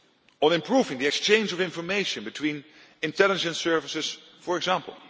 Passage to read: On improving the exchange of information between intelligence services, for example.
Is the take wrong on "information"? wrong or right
right